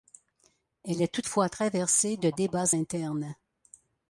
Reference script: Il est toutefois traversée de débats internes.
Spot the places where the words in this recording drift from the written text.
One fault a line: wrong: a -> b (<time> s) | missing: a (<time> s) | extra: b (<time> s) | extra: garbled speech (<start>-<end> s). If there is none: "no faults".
wrong: Il -> Elle (0.8 s)